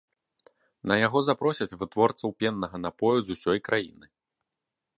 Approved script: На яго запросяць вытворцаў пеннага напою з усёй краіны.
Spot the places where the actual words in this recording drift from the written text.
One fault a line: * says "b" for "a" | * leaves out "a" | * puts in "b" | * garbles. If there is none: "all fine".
all fine